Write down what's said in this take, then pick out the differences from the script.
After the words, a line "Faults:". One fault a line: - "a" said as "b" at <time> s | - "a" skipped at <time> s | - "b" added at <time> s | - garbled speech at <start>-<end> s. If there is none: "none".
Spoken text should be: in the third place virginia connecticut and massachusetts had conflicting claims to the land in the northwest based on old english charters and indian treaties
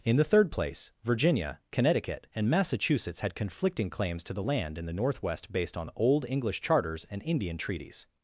in the third place virginia connecticut and massachusetts had conflicting claims to the land in the northwest based on old english charters and indian treaties
Faults:
none